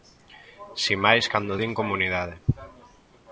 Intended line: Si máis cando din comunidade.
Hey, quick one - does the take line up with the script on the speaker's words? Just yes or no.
yes